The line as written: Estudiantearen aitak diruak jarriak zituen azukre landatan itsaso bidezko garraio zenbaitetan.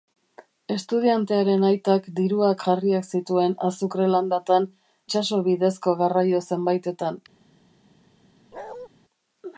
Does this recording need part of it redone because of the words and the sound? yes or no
yes